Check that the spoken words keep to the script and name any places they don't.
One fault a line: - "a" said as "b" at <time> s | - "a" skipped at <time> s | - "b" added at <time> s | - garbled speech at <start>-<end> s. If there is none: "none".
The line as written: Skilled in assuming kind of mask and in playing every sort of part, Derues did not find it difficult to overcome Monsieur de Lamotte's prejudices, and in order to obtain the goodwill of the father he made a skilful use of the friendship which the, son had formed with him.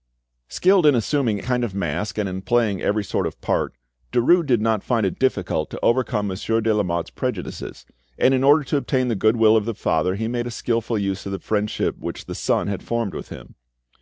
none